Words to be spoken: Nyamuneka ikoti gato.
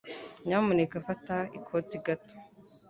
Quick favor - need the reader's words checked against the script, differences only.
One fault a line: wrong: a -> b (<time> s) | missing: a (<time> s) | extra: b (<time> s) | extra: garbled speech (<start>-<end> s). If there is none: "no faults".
extra: fata (1.1 s)